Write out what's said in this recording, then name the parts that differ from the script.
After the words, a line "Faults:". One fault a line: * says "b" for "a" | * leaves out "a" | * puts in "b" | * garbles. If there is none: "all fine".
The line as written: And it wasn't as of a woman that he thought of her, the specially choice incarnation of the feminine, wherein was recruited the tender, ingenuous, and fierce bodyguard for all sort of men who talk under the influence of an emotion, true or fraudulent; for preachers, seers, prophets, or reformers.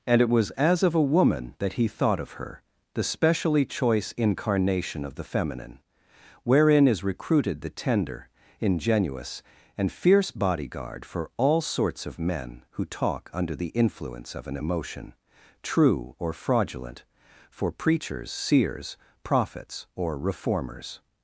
And it was as of a woman that he thought of her, the specially choice incarnation of the feminine, wherein is recruited the tender, ingenuous, and fierce bodyguard for all sorts of men who talk under the influence of an emotion, true or fraudulent; for preachers, seers, prophets, or reformers.
Faults:
* says "was" for "wasn't"
* says "is" for "was"
* says "sorts" for "sort"